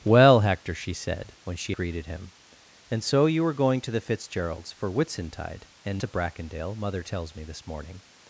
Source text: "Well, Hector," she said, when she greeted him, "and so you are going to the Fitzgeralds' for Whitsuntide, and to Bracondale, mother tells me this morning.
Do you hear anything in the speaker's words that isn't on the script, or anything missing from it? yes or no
no